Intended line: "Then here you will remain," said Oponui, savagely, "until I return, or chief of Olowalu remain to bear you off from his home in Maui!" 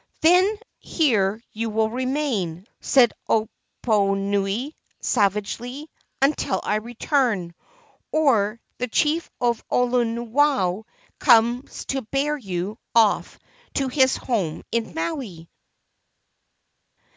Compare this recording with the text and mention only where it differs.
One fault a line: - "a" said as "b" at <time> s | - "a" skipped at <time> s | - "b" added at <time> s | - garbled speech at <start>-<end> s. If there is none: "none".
- "the" added at 8.8 s
- "remain" said as "comes" at 11.2 s
- "from" said as "to" at 13.7 s